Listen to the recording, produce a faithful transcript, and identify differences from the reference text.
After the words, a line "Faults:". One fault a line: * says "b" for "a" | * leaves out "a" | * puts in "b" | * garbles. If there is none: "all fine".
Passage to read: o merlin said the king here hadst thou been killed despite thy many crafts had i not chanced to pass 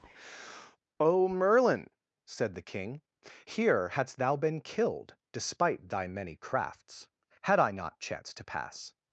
o merlin said the king here hadst thou been killed despite thy many crafts had i not chanced to pass
Faults:
all fine